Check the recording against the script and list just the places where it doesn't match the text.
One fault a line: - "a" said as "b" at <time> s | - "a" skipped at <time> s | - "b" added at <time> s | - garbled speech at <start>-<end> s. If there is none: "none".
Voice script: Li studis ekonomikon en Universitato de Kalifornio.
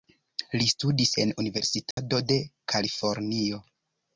- "ekonomikon" skipped at 1.1 s